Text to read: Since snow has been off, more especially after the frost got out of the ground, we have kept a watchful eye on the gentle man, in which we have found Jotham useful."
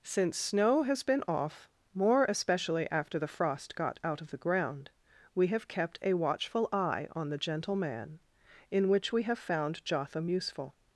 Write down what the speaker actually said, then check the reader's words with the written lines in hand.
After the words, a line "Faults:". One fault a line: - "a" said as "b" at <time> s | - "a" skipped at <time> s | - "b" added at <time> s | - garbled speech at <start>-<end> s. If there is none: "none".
Since snow has been off, more especially after the frost got out of the ground, we have kept a watchful eye on the gentle man, in which we have found Jotham useful."
Faults:
none